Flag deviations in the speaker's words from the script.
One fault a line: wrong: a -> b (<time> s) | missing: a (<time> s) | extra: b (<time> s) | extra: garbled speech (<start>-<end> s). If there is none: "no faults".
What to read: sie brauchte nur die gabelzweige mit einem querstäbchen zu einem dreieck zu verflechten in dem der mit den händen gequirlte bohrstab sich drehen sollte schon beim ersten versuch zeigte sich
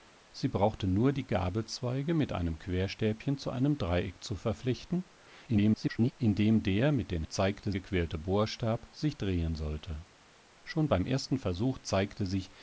extra: garbled speech (5.5-6.1 s)
wrong: händen -> zeigte (7.2 s)